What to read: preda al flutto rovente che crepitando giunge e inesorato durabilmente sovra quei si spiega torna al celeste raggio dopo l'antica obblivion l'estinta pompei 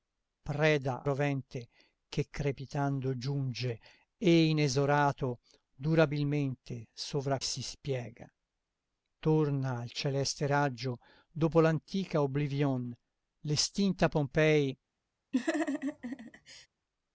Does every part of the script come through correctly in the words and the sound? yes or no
no